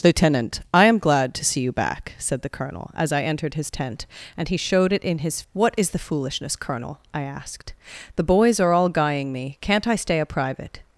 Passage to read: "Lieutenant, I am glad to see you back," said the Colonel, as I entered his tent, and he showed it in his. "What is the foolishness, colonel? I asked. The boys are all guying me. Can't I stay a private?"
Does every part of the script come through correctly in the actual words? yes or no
yes